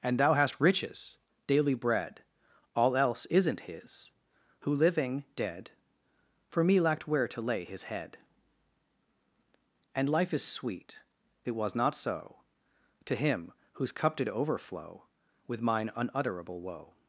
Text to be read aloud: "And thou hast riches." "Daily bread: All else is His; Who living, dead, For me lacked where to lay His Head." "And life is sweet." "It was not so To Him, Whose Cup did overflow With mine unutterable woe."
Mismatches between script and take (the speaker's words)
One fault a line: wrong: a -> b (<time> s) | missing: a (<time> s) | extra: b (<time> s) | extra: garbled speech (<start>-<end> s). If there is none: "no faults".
wrong: is -> isn't (3.3 s)